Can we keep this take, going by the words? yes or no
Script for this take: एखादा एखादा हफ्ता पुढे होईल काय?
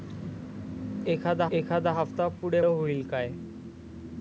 yes